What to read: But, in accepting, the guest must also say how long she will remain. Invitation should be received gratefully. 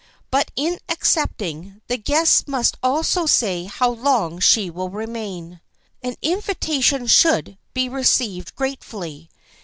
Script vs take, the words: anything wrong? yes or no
yes